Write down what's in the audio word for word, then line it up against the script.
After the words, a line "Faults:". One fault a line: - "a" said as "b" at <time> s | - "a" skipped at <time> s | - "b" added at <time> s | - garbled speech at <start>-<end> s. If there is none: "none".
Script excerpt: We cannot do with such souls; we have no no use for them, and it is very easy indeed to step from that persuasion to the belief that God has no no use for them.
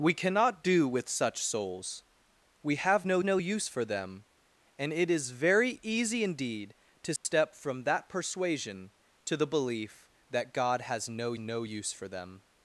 We cannot do with such souls; we have no no use for them, and it is very easy indeed to step from that persuasion to the belief that God has no no use for them.
Faults:
none